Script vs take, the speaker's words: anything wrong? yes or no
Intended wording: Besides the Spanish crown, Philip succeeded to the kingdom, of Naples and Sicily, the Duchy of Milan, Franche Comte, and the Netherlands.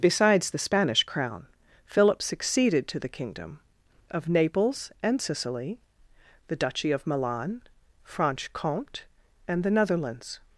no